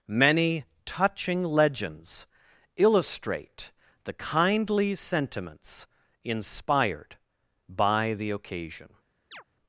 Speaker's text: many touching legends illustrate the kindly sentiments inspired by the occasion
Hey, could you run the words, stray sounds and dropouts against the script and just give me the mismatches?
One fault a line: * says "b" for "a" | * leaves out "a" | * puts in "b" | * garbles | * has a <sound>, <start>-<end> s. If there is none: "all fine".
* has a chirp, 9.3-9.4 s